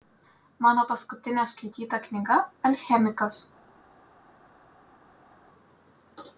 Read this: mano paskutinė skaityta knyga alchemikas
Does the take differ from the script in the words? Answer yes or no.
no